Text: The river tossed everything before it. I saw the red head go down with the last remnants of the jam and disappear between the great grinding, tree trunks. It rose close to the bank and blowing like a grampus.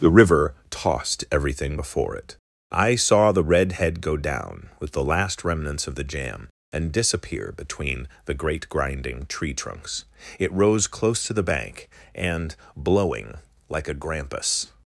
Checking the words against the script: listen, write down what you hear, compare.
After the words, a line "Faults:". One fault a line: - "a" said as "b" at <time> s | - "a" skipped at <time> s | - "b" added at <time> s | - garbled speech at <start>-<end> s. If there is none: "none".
The river tossed everything before it. I saw the red head go down with the last remnants of the jam and disappear between the great grinding, tree trunks. It rose close to the bank and blowing like a grampus.
Faults:
none